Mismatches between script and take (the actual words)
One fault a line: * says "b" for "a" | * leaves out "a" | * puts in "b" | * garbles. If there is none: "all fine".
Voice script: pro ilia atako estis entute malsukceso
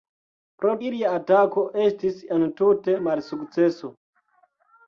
all fine